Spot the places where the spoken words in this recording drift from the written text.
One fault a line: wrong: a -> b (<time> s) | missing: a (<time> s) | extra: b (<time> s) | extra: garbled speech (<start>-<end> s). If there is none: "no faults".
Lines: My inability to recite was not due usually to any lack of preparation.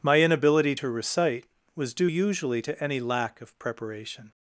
missing: not (1.9 s)